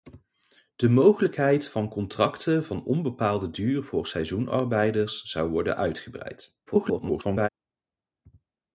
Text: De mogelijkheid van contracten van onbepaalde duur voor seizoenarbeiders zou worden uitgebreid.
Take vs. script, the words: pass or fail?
fail